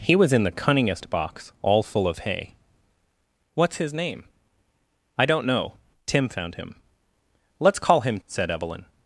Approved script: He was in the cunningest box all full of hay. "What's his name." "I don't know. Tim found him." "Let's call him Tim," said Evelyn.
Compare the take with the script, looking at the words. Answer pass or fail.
fail